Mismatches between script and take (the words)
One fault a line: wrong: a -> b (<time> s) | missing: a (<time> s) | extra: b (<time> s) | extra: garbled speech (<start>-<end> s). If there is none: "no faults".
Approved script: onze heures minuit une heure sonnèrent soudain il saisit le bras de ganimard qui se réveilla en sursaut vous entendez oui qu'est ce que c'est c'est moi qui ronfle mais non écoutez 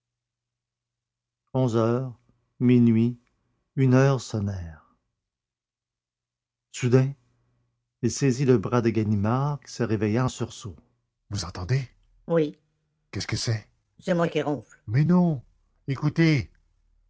no faults